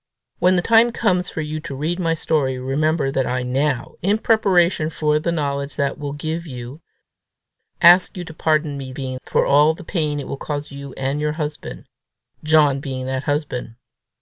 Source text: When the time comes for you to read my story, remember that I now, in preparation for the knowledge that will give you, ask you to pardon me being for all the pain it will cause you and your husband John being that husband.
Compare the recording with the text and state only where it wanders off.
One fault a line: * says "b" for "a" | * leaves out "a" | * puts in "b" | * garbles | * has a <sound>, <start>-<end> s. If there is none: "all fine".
all fine